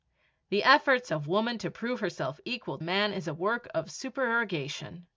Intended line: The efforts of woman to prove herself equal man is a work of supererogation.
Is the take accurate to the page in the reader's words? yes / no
yes